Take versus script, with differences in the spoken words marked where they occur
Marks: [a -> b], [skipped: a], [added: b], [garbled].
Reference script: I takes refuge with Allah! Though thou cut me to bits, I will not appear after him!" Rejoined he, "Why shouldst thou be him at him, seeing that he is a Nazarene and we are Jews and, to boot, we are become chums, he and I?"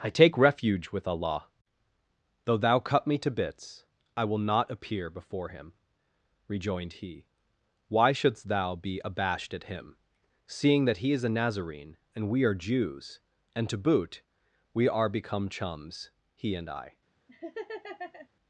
I [takes -> take] refuge with Allah! Though thou cut me to bits, I will not appear [after -> before] him!" Rejoined he, "Why shouldst thou be [him -> abashed] at him, seeing that he is a Nazarene and we are Jews and, to boot, we are become chums, he and I?"